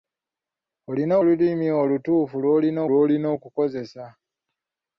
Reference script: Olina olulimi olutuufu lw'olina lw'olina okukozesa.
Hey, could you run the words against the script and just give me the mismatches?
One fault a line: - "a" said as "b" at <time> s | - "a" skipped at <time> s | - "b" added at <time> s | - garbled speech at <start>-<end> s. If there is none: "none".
none